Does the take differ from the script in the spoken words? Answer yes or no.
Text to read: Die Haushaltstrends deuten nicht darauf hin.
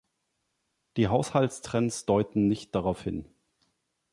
no